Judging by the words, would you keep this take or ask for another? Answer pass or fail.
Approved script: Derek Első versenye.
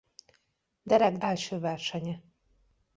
pass